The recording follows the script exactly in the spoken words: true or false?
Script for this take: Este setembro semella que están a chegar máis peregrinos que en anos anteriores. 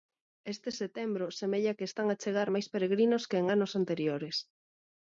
true